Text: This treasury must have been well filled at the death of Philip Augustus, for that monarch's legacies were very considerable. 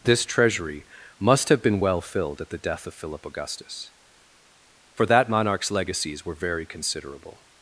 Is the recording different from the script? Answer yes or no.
no